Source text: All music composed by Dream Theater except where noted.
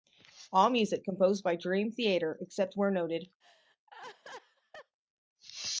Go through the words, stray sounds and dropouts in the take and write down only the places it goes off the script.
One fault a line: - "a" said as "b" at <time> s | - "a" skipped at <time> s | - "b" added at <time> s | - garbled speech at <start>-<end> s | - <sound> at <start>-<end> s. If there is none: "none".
- laugh at 3.4-5.0 s